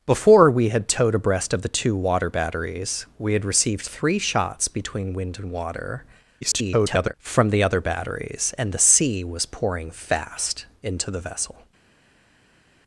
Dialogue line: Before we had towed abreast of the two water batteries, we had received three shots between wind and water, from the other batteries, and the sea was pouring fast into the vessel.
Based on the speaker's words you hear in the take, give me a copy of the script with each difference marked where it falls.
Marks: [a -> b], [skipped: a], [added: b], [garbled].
Before we had towed abreast of the two water batteries, we had received three shots between wind and water, [garbled] from the other batteries, and the sea was pouring fast into the vessel.